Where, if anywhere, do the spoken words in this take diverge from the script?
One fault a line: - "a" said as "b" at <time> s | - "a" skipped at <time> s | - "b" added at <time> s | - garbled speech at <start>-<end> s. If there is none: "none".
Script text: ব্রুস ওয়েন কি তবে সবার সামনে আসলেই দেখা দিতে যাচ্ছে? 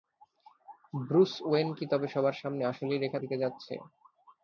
- "দেখা" skipped at 3.0 s